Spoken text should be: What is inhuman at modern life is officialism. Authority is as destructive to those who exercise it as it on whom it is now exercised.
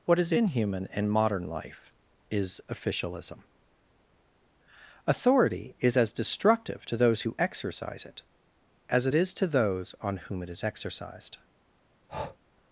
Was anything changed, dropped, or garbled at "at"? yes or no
yes